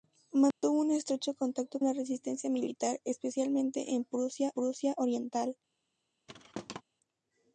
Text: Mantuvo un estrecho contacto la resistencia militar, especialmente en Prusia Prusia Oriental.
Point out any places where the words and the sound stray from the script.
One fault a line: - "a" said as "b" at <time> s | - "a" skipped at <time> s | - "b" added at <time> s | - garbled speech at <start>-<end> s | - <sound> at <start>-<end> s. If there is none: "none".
- dropout at 0.5-0.6 s
- thud at 6.3-6.8 s